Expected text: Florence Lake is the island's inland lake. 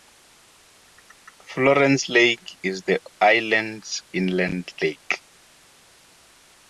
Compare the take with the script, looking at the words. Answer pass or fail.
pass